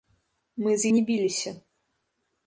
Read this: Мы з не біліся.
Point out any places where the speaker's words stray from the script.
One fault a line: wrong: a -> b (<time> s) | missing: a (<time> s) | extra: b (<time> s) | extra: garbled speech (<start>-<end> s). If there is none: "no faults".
no faults